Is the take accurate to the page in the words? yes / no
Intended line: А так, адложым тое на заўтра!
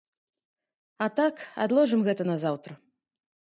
no